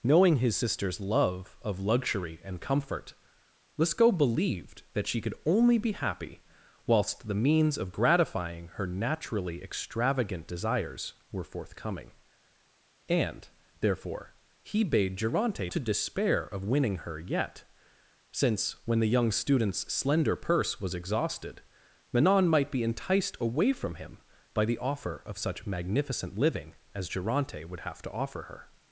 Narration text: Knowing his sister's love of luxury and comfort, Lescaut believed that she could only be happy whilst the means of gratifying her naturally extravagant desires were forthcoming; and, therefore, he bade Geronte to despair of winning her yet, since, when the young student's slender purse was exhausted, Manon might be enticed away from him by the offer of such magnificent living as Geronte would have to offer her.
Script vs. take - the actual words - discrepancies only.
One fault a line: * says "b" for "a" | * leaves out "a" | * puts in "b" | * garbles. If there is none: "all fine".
all fine